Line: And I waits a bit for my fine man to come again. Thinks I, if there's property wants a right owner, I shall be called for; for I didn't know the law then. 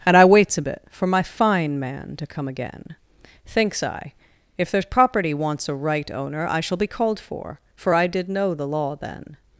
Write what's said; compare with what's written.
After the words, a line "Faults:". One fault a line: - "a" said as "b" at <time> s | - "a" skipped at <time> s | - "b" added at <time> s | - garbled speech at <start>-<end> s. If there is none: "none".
And I waits a bit for my fine man to come again. Thinks I, if there's property wants a right owner, I shall be called for; for I did know the law then.
Faults:
- "didn't" said as "did" at 8.1 s